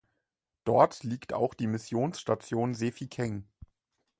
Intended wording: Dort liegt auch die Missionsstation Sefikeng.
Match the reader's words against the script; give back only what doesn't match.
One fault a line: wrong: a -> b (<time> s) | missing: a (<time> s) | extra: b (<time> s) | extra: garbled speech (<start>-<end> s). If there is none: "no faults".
no faults